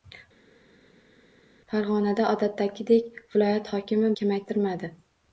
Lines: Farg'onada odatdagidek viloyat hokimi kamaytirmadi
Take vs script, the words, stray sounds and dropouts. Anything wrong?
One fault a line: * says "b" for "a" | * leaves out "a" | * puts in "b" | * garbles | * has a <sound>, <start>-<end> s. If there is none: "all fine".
all fine